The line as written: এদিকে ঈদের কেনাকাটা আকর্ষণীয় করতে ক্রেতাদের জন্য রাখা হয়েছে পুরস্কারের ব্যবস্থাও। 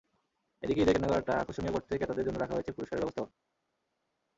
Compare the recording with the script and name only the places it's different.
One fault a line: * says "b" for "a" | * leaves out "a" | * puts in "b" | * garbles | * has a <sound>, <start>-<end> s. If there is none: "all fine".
all fine